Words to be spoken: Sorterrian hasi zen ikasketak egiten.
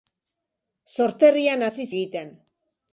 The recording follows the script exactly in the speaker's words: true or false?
false